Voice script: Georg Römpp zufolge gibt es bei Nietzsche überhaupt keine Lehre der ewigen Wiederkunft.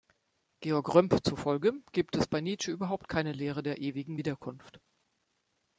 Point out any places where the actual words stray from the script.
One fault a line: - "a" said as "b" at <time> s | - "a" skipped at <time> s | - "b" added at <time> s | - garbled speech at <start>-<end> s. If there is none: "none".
none